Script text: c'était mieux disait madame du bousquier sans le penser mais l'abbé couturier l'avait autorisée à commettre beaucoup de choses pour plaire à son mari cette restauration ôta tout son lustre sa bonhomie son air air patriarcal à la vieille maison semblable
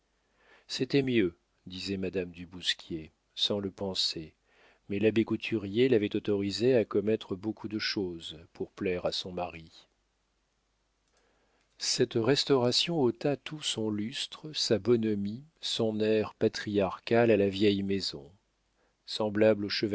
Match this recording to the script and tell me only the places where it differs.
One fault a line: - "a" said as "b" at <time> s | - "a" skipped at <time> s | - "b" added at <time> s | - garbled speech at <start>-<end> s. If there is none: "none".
- "air" skipped at 16.3 s